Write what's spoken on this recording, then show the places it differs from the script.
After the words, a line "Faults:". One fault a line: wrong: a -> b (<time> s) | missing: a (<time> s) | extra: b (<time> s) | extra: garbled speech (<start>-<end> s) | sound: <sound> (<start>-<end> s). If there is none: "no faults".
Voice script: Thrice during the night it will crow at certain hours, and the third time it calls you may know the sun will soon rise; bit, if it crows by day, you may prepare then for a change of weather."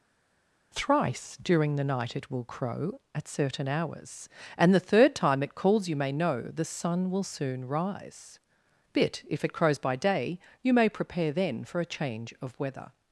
Thrice during the night it will crow at certain hours, and the third time it calls you may know the sun will soon rise; bit, if it crows by day, you may prepare then for a change of weather."
Faults:
no faults